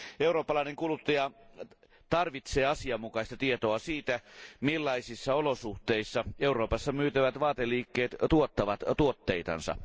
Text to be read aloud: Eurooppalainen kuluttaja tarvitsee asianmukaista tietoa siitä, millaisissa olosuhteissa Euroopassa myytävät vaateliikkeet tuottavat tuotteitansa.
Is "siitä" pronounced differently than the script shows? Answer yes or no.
no